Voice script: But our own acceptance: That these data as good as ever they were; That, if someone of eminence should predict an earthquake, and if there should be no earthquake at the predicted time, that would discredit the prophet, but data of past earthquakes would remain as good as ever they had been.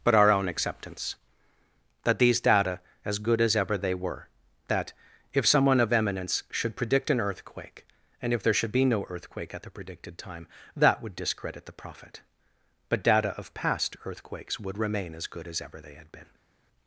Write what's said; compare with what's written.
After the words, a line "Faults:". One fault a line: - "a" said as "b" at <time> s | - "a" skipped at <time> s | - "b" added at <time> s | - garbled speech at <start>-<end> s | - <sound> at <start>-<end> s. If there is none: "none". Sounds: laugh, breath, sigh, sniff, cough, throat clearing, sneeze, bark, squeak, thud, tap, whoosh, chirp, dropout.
But our own acceptance: That these data as good as ever they were; That, if someone of eminence should predict an earthquake, and if there should be no earthquake at the predicted time, that would discredit the prophet, but data of past earthquakes would remain as good as ever they had been.
Faults:
none